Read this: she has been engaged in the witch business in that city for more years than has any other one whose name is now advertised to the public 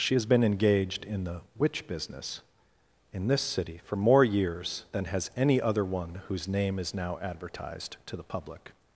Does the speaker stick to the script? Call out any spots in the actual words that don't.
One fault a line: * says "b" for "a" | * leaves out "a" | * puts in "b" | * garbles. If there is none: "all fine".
* says "this" for "that"